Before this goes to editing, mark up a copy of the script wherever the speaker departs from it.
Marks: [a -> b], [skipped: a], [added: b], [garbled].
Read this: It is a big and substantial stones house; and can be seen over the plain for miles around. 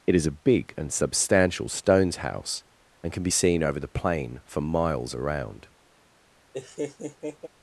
It is a big and substantial stones house; and can be seen over the plain for miles around.